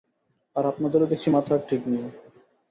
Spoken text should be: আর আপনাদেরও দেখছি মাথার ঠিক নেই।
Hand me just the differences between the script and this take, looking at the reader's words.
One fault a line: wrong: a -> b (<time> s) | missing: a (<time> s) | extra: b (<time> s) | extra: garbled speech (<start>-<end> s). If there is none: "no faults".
no faults